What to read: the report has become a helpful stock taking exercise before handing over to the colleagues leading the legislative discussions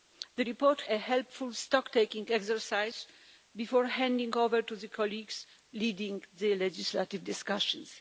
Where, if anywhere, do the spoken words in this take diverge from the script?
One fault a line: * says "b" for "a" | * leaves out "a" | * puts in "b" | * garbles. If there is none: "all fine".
* leaves out "has become"